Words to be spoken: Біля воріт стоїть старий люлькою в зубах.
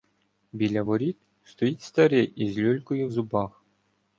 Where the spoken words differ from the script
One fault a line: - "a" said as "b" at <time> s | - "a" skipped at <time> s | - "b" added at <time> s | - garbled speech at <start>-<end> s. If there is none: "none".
- "із" added at 2.4 s